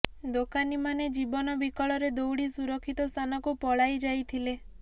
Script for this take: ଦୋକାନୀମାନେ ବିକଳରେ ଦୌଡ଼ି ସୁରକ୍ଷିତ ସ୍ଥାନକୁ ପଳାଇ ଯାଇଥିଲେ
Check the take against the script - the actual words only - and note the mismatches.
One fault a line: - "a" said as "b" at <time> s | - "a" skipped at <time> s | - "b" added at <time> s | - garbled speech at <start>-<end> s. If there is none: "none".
- "ଜୀବନ" added at 1.2 s